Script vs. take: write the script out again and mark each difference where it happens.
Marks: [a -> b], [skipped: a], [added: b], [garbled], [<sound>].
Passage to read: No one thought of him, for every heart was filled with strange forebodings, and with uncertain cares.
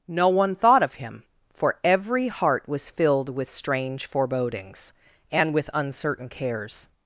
No one thought of him, for every heart was filled with strange forebodings, and with uncertain cares.